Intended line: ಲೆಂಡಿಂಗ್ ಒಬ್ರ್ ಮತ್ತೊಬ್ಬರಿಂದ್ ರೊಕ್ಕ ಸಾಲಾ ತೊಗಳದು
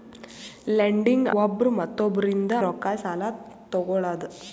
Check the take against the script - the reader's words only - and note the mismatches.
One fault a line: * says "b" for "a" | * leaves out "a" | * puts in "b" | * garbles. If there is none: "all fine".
all fine